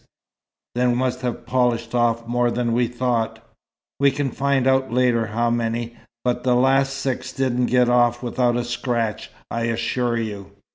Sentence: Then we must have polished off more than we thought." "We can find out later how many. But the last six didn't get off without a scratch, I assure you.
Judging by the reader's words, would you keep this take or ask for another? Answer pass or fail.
fail